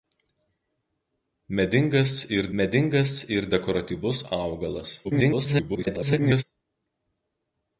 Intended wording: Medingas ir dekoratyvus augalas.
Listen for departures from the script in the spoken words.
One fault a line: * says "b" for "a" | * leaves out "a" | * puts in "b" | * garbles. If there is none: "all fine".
* puts in "medingas ir"
* garbles